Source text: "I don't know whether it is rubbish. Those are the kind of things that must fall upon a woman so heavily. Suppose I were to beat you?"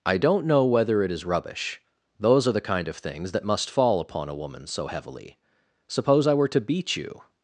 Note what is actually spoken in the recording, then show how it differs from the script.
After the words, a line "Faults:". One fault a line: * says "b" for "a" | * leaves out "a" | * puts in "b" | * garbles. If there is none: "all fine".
"I don't know whether it is rubbish. Those are the kind of things that must fall upon a woman so heavily. Suppose I were to beat you?"
Faults:
all fine